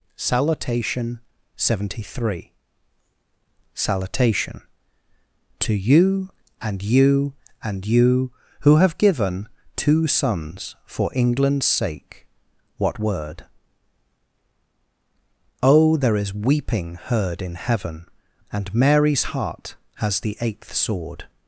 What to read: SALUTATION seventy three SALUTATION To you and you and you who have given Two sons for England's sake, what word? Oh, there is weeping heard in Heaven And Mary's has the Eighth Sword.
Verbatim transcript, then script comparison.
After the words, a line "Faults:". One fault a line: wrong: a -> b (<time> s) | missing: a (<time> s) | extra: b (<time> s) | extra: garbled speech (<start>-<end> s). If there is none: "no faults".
SALUTATION seventy three SALUTATION To you and you and you who have given Two sons for England's sake, what word? Oh, there is weeping heard in Heaven And Mary's heart has the Eighth Sword.
Faults:
extra: heart (19.3 s)